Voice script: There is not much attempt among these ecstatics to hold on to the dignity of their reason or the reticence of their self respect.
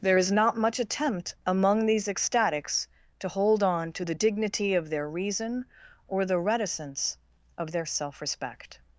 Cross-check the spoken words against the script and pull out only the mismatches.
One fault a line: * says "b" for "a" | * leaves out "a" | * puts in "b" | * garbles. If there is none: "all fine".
all fine